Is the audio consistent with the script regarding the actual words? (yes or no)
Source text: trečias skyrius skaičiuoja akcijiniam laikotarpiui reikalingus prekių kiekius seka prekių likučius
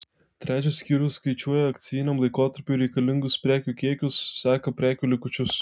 yes